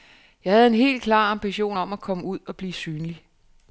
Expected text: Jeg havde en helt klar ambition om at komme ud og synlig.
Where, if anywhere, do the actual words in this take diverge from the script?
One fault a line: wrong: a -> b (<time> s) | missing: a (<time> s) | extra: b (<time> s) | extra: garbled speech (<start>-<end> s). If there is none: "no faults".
extra: blive (2.6 s)